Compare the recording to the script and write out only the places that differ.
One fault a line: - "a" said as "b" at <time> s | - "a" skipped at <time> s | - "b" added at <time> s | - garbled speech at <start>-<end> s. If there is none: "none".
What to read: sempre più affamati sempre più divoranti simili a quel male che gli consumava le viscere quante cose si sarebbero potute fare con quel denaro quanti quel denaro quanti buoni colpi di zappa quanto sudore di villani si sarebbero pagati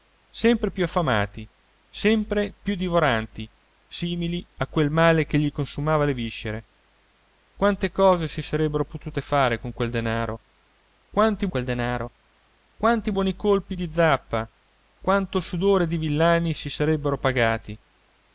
none